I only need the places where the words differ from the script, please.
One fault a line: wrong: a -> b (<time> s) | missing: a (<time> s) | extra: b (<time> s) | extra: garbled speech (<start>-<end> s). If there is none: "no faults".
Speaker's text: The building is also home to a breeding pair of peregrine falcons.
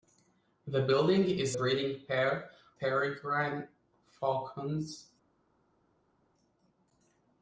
missing: also home to (1.6 s)
missing: of (2.5 s)